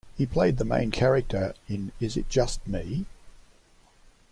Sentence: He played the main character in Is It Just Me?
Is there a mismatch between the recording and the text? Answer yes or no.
no